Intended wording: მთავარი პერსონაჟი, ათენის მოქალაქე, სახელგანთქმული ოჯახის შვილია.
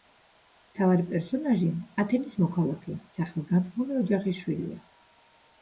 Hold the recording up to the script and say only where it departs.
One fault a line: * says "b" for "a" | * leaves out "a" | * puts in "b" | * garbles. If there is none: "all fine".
all fine